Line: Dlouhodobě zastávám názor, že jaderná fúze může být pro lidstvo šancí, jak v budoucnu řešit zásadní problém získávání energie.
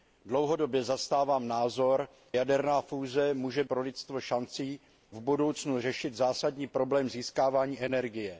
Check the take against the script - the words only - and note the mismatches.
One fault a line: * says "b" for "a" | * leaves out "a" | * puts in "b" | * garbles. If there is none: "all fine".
* leaves out "že"
* leaves out "být"
* leaves out "jak"